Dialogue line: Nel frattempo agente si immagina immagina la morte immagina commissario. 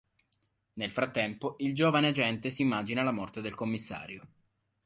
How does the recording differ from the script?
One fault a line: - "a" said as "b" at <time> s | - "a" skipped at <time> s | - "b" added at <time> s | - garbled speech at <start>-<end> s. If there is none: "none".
- "il giovane" added at 1.6 s
- "immagina" skipped at 3.0 s
- "immagina" said as "del" at 3.4 s